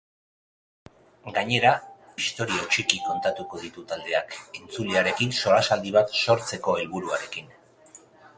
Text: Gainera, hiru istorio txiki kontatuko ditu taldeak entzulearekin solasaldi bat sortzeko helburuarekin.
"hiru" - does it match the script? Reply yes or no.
no